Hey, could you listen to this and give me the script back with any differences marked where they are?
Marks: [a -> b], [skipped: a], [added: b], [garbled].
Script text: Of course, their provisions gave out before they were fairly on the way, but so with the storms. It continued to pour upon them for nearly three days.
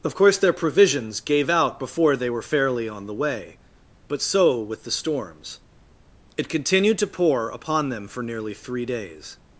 Of course, their provisions gave out before they were fairly on the way, but so with the storms. It continued to pour upon them for nearly three days.